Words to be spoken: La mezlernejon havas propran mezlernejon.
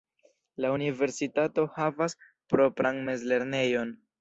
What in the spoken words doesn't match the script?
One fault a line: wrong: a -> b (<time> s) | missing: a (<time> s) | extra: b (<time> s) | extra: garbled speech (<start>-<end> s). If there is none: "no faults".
wrong: mezlernejon -> universitato (0.8 s)